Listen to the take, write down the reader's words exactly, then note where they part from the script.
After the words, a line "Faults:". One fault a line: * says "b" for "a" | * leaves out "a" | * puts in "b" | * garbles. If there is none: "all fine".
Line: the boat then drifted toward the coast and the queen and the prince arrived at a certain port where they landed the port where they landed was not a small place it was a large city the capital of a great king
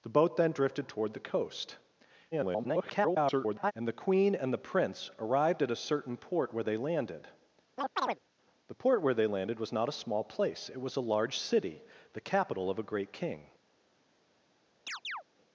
the boat then drifted toward the coast [garbled] and the queen and the prince arrived at a certain port where they landed the port where they landed was not a small place it was a large city the capital of a great king
Faults:
* garbles